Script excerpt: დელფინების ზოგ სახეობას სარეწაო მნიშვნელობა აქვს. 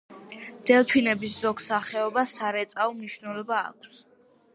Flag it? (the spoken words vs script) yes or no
no